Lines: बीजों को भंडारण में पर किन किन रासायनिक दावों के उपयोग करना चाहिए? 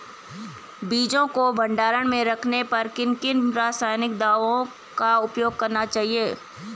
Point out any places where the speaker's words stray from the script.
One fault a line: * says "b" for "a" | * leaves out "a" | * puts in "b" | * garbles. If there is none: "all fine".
* puts in "रखने"
* says "का" for "के"